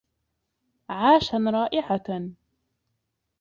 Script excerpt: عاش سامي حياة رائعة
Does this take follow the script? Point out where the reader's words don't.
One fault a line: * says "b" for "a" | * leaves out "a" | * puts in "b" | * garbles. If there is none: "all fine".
* leaves out "سامي حياة"